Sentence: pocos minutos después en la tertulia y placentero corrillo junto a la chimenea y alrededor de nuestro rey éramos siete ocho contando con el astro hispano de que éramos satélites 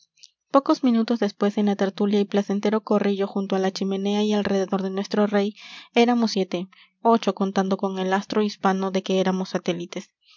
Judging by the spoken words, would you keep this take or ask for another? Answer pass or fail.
pass